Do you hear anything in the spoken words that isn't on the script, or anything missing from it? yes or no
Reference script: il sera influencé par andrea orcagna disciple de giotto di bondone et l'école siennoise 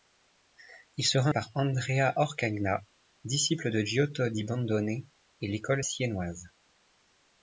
yes